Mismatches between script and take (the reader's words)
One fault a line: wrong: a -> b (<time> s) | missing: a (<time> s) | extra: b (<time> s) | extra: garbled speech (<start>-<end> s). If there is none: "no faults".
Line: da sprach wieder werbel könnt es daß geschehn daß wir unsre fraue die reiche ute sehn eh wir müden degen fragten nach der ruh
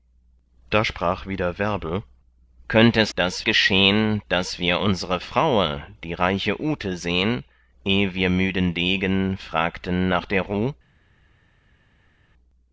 no faults